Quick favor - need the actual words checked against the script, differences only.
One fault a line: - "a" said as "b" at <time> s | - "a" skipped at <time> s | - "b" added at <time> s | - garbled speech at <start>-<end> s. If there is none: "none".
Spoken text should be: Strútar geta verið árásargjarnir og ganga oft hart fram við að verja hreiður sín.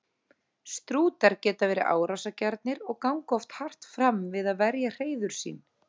none